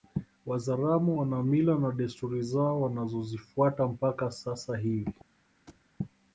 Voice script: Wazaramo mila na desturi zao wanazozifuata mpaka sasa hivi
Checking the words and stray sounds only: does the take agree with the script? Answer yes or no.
no